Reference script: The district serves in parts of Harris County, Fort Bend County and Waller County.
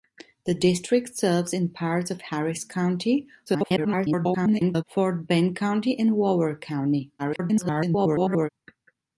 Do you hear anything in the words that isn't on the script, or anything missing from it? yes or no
yes